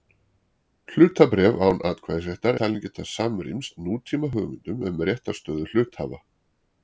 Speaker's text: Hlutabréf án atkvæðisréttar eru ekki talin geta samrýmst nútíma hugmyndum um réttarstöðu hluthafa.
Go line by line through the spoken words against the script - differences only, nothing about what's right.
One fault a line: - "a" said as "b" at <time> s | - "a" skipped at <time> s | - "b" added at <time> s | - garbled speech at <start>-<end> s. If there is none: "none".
- "eru ekki" skipped at 2.6 s